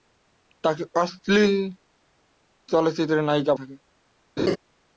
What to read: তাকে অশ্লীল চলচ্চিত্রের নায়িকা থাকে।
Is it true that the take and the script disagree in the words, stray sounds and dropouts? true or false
true